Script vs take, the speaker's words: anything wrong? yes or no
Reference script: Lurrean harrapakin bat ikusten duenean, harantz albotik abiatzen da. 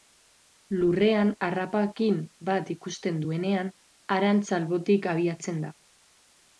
no